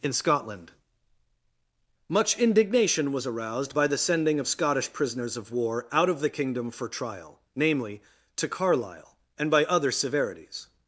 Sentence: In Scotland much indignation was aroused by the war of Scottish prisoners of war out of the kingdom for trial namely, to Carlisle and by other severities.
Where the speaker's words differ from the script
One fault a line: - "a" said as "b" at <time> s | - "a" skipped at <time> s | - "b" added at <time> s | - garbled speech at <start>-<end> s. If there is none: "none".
- "war" said as "sending" at 4.0 s